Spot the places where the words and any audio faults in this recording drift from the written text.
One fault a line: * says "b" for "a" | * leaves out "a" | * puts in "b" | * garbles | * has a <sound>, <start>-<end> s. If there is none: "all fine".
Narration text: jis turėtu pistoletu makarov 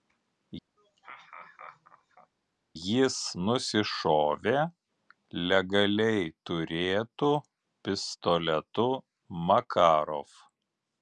* has a laugh, 0.8-2.3 s
* puts in "nusišovė legaliai"